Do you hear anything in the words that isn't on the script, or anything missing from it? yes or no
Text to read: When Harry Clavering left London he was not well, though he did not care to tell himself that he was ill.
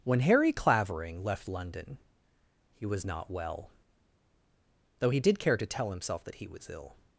yes